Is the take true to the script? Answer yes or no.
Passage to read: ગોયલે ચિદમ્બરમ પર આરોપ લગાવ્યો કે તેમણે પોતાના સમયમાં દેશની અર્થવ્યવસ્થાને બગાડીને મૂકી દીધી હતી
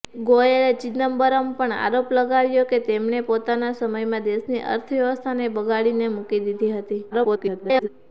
no